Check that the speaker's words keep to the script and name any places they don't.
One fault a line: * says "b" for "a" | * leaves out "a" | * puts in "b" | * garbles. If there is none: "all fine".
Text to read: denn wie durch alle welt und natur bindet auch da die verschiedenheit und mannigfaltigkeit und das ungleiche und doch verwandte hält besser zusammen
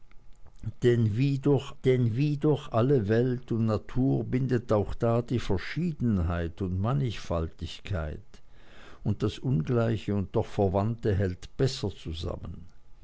* puts in "denn wie durch"